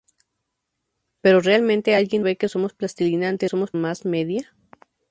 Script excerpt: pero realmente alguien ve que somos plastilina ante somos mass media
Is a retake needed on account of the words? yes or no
no